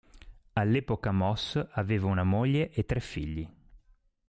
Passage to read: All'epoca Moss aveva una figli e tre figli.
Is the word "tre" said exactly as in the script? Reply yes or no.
yes